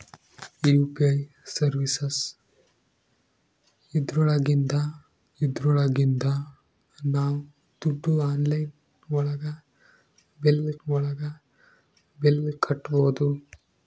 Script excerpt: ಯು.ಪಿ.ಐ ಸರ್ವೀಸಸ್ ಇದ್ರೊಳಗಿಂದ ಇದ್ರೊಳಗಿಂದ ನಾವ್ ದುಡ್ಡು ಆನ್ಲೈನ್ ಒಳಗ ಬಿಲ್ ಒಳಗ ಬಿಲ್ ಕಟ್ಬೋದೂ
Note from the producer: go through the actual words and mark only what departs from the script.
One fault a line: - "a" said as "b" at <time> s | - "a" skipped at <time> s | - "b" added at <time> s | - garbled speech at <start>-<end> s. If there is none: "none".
none